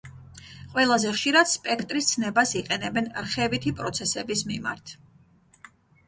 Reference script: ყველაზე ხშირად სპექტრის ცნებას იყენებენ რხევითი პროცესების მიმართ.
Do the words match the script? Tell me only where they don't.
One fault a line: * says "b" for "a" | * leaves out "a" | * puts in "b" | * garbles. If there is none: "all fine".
all fine